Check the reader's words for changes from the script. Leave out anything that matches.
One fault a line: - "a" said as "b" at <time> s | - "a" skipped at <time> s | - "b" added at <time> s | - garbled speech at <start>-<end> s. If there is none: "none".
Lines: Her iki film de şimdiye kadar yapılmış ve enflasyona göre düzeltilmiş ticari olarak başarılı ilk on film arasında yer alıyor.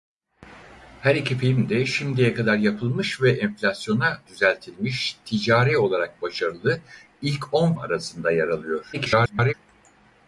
- "göre" skipped at 4.2 s
- "film" skipped at 7.7 s
- garbled speech at 8.9-9.5 s